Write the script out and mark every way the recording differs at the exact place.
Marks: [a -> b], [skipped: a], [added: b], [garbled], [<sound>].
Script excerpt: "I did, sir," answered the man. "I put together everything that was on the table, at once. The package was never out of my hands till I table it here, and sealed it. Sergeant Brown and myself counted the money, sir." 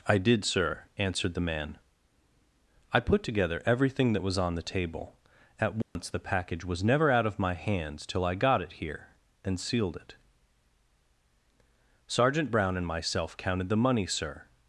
"I did, sir," answered the man. "I put together everything that was on the table, at once. [dropout] The package was never out of my hands till I [table -> got] it here, and sealed it. Sergeant Brown and myself counted the money, sir."